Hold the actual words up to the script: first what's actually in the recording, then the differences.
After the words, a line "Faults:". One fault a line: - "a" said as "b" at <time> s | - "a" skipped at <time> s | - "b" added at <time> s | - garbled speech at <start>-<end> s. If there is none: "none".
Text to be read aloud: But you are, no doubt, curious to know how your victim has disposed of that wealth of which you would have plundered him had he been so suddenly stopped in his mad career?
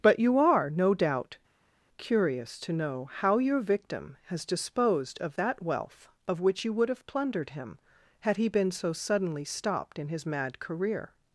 But you are, no doubt, curious to know how your victim has disposed of that wealth of which you would have plundered him had he been so suddenly stopped in his mad career?
Faults:
none